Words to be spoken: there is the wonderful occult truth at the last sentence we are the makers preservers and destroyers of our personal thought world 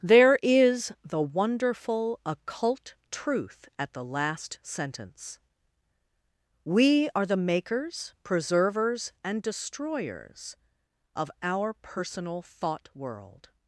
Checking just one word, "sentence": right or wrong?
right